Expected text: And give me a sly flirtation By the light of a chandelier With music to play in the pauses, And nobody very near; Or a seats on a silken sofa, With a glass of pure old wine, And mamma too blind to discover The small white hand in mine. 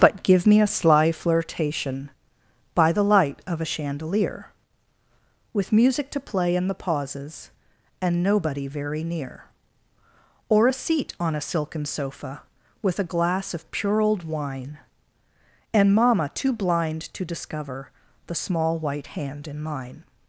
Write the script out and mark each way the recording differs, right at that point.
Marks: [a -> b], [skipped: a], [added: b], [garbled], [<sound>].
[And -> But] give me a sly flirtation By the light of a chandelier With music to play in the pauses, And nobody very near; Or a [seats -> seat] on a silken sofa, With a glass of pure old wine, And mamma too blind to discover The small white hand in mine.